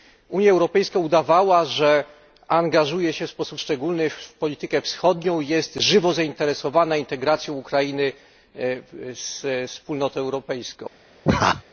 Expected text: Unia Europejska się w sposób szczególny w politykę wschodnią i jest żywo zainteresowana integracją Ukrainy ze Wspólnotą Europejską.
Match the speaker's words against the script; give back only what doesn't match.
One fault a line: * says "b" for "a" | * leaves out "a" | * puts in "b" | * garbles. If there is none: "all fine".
* puts in "udawała że angażuje"